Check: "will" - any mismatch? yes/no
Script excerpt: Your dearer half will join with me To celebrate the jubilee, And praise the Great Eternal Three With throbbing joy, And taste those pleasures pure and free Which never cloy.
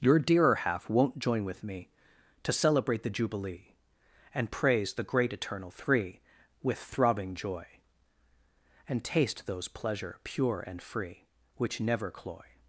yes